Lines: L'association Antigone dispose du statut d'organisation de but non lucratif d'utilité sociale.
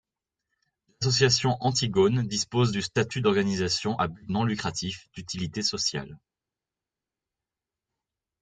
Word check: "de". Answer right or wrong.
wrong